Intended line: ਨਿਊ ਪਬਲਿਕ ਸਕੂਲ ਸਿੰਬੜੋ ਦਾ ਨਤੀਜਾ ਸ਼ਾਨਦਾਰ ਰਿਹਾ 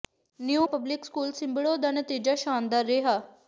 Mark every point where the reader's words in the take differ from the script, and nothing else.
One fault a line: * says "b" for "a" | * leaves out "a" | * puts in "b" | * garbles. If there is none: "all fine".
all fine